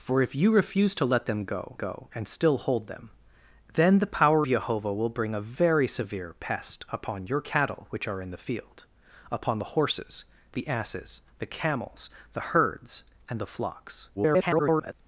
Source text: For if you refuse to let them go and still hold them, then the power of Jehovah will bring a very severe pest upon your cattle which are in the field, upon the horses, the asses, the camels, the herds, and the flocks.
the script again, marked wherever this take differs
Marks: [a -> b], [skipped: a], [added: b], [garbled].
For if you refuse to let them go [added: go] and still hold them, then the power [skipped: of] Jehovah will bring a very severe pest upon your cattle which are in the field, upon the horses, the asses, the camels, the herds, and the flocks. [garbled]